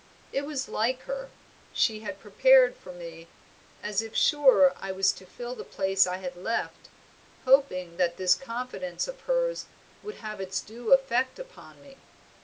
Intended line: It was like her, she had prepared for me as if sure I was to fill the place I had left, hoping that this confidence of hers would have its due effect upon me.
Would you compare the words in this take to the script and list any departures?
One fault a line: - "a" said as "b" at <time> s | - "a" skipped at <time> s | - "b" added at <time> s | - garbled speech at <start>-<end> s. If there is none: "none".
none